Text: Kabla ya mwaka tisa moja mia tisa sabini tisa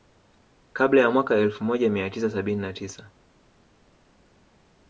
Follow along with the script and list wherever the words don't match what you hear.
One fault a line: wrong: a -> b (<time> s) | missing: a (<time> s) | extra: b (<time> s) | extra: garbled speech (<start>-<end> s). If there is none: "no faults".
wrong: tisa -> elfu (1.4 s)
extra: na (2.6 s)